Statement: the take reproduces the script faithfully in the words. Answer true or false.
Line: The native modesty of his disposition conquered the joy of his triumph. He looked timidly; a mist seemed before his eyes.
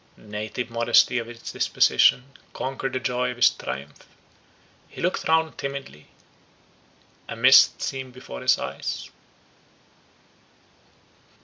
false